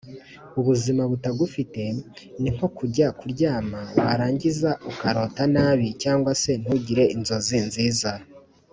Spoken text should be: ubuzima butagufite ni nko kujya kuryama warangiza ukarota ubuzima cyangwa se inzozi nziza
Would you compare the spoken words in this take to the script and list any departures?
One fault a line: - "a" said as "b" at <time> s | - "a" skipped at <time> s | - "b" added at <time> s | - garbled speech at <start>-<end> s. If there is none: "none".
- "ubuzima" said as "nabi" at 5.5 s
- "ntugire" added at 6.6 s